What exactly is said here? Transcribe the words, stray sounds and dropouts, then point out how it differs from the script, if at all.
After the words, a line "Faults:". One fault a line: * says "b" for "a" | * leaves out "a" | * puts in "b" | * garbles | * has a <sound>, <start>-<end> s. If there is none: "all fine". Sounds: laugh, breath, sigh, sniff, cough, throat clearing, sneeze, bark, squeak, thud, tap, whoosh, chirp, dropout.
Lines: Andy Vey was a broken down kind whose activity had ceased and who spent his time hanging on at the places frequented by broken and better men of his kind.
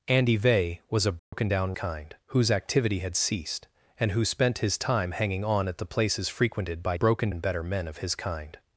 Andy Vey was a broken down kind whose activity had ceased and who spent his time hanging on at the places frequented by broken and better men of his kind.
Faults:
* has a dropout, 1.2-1.3 s